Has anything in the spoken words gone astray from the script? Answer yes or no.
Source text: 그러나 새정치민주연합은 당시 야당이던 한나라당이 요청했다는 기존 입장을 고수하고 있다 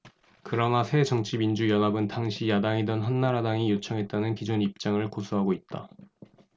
no